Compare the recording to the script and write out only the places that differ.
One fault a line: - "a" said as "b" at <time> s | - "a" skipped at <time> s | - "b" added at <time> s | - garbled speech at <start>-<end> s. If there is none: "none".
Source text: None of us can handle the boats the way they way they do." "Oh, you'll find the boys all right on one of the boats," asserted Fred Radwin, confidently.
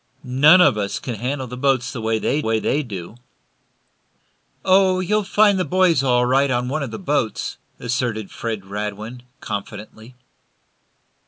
none